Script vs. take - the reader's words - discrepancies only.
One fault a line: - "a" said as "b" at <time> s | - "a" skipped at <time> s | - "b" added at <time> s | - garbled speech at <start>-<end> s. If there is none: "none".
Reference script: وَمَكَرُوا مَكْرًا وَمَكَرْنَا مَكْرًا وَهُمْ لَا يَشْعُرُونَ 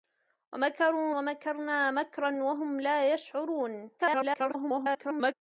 - "مَكْرًا" skipped at 1.1 s
- garbled speech at 4.0-5.3 s